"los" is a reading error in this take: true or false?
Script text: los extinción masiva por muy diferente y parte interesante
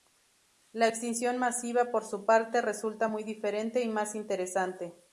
true